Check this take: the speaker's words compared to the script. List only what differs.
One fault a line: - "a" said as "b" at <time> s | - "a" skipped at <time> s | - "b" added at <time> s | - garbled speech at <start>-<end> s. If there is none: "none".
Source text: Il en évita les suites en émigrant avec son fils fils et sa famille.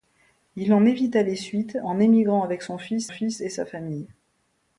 none